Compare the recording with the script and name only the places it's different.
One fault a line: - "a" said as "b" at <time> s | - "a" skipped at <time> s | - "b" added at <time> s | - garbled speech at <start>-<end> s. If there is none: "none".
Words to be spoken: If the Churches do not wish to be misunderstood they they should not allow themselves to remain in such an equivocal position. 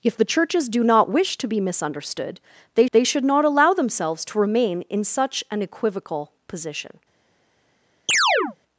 none